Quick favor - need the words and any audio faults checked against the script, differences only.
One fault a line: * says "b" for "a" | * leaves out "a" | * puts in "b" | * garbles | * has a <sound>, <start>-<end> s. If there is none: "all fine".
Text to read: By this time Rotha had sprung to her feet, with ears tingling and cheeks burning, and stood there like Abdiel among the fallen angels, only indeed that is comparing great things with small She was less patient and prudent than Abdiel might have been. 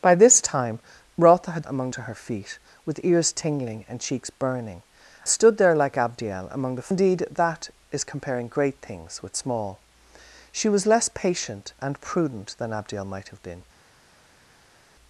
* says "among" for "sprung"
* leaves out "and"
* leaves out "fallen angels only"